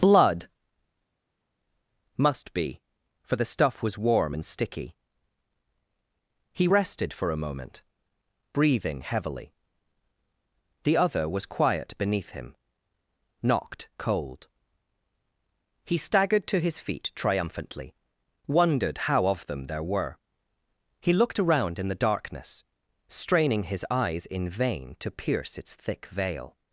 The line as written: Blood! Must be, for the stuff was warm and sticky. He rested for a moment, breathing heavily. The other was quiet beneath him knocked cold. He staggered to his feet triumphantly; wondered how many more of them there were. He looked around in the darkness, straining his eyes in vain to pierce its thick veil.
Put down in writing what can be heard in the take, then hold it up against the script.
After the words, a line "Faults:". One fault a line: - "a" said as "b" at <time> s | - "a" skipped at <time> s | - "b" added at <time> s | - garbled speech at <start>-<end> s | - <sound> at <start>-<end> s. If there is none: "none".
Blood! Must be, for the stuff was warm and sticky. He rested for a moment, breathing heavily. The other was quiet beneath him knocked cold. He staggered to his feet triumphantly; wondered how of them there were. He looked around in the darkness, straining his eyes in vain to pierce its thick veil.
Faults:
- "many more" skipped at 19.3 s